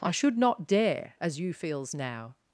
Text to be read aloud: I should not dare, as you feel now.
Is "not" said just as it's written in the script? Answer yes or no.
yes